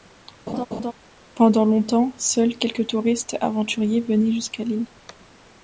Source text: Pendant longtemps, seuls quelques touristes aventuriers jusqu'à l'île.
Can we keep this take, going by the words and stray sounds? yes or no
no